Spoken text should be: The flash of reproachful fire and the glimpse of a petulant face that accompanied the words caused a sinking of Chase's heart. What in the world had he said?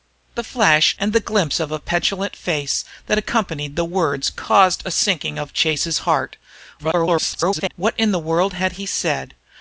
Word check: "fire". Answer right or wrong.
wrong